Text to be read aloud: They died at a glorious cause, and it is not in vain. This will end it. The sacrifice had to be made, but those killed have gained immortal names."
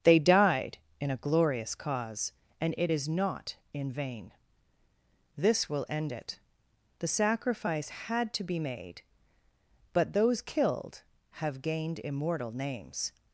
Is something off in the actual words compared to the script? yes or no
yes